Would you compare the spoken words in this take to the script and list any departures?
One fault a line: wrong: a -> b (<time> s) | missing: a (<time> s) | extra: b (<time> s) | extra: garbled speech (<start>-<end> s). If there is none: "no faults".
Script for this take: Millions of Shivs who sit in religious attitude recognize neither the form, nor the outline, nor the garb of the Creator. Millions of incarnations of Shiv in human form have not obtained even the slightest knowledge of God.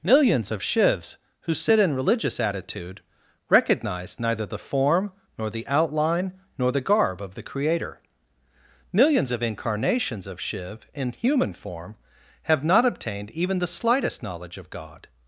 no faults